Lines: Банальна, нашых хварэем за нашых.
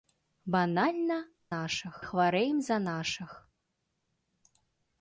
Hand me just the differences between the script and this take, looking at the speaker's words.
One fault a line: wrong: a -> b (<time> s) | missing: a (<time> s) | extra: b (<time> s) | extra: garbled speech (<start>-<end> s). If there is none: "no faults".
no faults